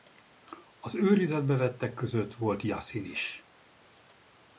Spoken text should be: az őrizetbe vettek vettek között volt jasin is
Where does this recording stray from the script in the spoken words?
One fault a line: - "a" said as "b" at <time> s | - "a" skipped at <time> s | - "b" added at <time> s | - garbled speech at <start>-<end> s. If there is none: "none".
- "vettek" skipped at 1.9 s